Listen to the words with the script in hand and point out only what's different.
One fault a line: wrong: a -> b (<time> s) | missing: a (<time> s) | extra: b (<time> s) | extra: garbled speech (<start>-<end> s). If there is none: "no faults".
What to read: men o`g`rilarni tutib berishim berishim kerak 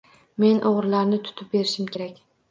missing: berishim (1.9 s)